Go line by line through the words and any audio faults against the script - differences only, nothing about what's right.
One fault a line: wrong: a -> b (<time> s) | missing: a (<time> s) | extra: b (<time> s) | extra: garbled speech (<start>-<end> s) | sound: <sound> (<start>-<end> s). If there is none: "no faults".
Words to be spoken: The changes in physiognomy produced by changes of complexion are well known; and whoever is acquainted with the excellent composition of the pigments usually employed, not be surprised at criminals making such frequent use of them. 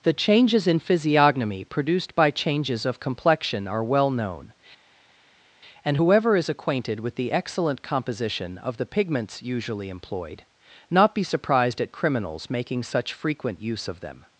no faults